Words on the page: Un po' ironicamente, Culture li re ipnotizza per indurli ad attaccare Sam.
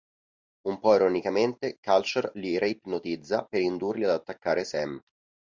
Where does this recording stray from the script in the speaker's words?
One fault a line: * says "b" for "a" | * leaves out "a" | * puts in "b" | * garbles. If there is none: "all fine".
all fine